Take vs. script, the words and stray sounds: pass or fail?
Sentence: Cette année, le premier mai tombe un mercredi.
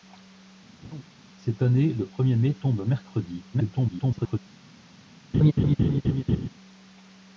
fail